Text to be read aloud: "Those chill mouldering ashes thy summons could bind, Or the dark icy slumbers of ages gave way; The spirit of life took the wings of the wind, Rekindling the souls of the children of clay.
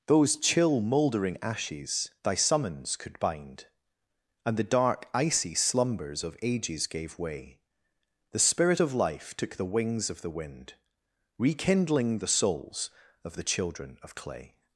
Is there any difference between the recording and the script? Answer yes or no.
yes